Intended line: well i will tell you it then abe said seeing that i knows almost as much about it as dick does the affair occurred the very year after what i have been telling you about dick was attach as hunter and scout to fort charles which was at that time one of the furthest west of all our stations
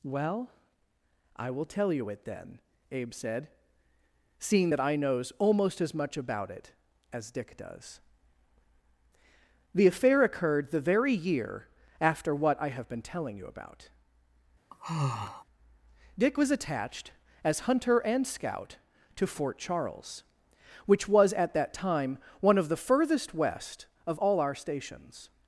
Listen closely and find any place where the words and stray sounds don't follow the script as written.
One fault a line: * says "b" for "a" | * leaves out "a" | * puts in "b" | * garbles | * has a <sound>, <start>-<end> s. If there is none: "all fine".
* has a sigh, 14.7-15.4 s
* says "attached" for "attach"